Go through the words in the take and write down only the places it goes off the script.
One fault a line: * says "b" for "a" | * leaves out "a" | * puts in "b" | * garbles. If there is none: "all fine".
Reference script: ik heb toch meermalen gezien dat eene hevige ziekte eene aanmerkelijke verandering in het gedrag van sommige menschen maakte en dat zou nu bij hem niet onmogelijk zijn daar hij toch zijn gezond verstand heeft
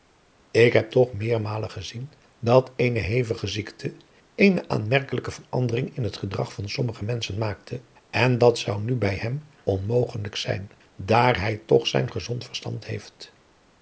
* leaves out "niet"